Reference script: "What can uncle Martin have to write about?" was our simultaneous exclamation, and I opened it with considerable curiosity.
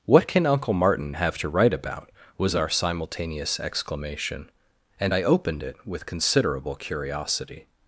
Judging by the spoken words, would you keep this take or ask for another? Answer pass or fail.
pass